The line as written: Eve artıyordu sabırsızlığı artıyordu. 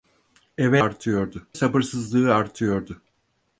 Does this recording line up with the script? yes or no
yes